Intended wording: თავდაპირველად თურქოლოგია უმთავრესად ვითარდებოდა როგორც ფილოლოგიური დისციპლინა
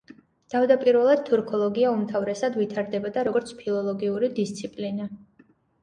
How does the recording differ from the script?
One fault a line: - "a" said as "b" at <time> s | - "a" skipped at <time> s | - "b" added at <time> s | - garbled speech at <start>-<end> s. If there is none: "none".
none